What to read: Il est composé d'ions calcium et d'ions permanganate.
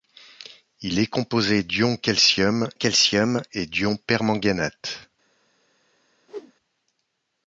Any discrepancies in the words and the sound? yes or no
yes